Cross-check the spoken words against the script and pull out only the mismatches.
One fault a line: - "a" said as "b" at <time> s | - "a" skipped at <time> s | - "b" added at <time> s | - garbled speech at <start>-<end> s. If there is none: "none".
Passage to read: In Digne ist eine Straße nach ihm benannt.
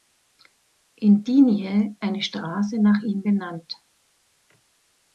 - "ist" skipped at 1.9 s